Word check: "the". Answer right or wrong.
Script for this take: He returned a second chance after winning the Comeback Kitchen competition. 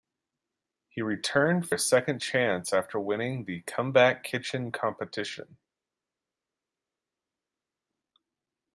right